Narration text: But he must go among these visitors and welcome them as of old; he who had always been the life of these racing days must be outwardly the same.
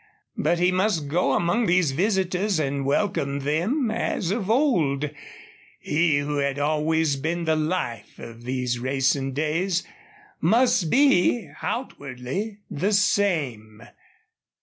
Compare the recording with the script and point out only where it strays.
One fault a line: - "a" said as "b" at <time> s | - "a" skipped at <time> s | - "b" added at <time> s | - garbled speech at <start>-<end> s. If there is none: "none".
none